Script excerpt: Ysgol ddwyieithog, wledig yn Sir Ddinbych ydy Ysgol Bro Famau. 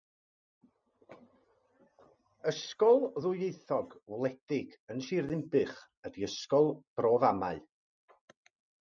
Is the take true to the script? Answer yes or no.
yes